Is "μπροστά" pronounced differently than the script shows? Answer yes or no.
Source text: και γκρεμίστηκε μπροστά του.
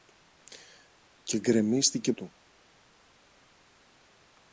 yes